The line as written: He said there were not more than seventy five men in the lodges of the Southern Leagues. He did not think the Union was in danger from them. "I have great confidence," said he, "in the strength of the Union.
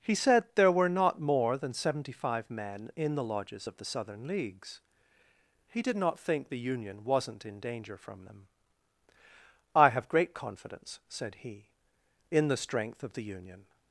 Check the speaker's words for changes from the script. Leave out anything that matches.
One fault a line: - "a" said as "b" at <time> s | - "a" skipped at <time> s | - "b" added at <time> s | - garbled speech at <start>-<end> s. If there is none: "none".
- "was" said as "wasn't" at 7.0 s